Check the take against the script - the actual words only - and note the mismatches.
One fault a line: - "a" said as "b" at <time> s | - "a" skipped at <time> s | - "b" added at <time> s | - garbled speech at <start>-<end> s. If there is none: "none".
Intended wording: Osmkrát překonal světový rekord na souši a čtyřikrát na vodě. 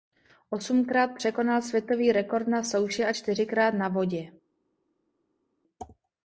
none